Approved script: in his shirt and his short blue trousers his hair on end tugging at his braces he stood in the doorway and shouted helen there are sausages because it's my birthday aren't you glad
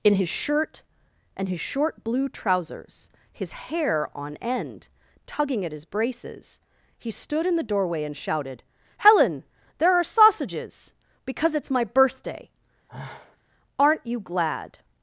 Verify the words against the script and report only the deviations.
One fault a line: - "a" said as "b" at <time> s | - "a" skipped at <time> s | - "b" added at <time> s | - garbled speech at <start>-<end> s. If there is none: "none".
none